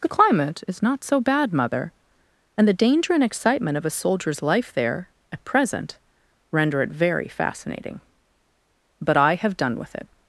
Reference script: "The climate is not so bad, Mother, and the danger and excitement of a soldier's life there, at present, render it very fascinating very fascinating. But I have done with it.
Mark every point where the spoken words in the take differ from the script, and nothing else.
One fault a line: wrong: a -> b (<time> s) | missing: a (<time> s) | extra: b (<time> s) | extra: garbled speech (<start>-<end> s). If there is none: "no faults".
missing: very fascinating (8.0 s)